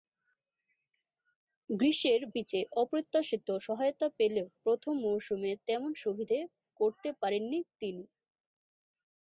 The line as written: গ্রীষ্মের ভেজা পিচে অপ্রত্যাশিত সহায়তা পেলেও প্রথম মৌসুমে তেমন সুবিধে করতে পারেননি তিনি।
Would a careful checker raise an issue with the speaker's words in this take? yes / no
yes